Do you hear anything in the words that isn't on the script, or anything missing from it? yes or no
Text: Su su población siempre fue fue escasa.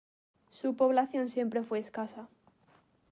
yes